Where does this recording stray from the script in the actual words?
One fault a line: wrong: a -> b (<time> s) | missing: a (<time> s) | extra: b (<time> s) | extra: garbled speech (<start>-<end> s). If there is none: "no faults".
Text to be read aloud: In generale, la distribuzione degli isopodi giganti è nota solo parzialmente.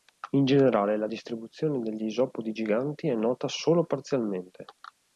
no faults